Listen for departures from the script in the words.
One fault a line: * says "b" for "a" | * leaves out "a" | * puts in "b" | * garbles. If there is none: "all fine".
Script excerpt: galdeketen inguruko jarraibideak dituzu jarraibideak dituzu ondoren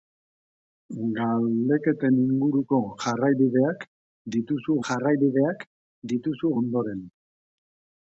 all fine